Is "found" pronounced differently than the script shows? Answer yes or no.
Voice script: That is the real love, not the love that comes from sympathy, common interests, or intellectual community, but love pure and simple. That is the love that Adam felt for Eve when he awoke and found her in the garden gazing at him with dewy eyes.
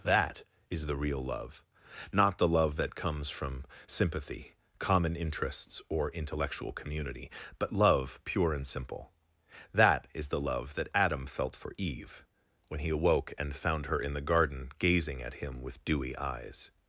no